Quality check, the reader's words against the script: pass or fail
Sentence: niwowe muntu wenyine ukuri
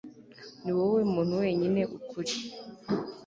pass